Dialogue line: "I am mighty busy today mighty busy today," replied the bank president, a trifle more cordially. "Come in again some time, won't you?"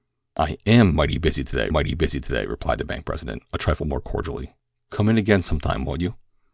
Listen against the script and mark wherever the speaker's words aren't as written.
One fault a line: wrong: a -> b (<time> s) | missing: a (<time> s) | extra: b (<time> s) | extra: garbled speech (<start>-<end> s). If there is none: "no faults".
no faults